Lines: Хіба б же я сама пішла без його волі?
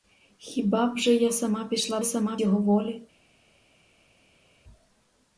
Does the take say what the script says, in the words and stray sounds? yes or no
no